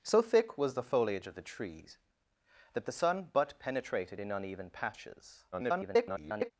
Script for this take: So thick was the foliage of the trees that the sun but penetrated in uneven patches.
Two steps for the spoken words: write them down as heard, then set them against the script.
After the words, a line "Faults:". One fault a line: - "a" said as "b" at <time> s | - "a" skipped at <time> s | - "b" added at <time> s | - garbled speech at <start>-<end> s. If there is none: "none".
So thick was the foliage of the trees that the sun but penetrated in uneven patches. [garbled]
Faults:
- garbled speech at 5.5-6.5 s